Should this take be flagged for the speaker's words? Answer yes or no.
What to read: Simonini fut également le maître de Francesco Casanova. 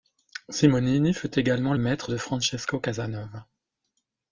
yes